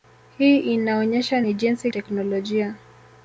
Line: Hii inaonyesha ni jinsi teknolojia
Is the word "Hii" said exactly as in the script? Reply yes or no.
yes